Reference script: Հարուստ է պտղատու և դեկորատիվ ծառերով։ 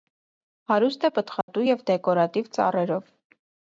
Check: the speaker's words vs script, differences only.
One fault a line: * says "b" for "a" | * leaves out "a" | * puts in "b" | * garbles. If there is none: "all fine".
all fine